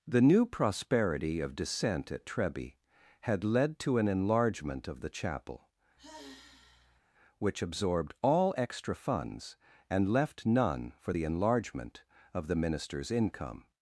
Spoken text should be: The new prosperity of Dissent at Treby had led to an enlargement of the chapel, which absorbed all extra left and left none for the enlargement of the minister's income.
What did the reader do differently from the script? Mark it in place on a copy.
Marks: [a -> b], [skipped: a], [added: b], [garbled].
The new prosperity of Dissent at Treby had led to an enlargement of the chapel, which absorbed all extra [left -> funds] and left none for the enlargement of the minister's income.